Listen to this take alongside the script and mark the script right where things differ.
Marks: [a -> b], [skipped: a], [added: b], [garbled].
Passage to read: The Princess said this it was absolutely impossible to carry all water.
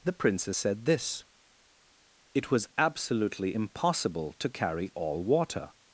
The Princess said this it was absolutely impossible to carry all water.